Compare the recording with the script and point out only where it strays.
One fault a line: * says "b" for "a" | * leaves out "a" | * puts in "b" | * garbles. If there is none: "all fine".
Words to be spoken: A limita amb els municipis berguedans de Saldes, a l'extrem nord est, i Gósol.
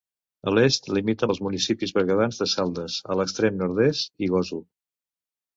* puts in "l'est"